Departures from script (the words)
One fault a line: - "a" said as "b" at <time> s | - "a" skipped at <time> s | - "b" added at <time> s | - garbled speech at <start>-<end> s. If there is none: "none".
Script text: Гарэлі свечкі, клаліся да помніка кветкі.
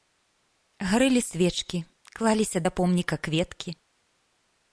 none